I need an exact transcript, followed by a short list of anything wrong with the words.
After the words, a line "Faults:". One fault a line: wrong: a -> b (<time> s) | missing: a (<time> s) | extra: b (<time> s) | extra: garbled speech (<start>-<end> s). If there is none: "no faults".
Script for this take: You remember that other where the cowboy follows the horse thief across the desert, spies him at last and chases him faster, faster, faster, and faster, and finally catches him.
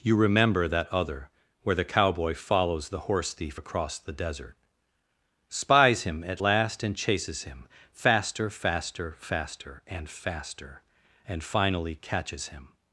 You remember that other where the cowboy follows the horse thief across the desert, spies him at last and chases him faster, faster, faster, and faster, and finally catches him.
Faults:
no faults